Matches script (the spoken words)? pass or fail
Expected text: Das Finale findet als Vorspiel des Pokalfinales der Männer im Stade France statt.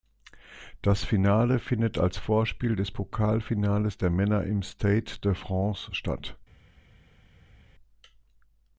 fail